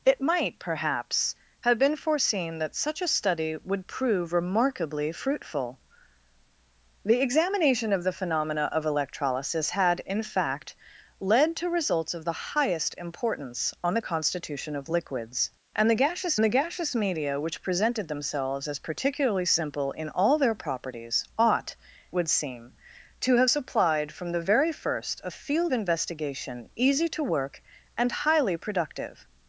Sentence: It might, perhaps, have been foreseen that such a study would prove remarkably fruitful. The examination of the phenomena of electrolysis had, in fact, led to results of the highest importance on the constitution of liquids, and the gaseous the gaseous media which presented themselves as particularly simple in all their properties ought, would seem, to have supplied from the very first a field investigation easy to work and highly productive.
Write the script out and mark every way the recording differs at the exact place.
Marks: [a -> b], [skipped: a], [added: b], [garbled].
It might, perhaps, have been foreseen that such a study would prove remarkably fruitful. The examination of the phenomena of electrolysis had, in fact, led to results of the highest importance on the constitution of liquids, and the gaseous the gaseous media which presented themselves as particularly simple in all their properties ought, would seem, to have supplied from the very first a field investigation easy to work and highly productive.